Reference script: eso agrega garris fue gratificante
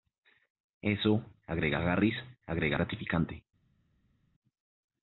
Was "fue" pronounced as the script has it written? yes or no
no